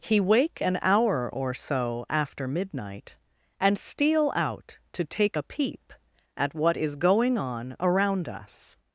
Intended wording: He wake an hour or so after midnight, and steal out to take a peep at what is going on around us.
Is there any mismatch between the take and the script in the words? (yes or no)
no